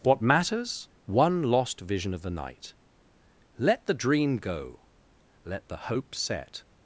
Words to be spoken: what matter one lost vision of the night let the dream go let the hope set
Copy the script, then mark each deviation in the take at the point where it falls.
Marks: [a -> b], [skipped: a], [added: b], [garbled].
what [matter -> matters] one lost vision of the night let the dream go let the hope set